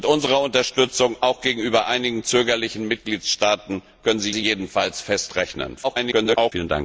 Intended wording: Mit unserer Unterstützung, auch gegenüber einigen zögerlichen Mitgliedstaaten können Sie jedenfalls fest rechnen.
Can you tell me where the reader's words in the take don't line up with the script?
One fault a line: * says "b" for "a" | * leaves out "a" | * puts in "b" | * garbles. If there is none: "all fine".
* puts in "Sie"
* garbles